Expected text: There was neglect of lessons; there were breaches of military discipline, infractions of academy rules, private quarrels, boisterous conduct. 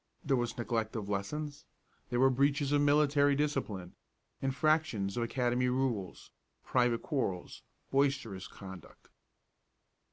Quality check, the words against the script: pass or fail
pass